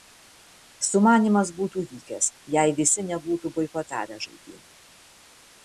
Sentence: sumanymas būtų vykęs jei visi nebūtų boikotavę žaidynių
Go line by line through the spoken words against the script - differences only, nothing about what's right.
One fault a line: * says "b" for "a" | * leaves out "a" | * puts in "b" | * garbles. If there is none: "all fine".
all fine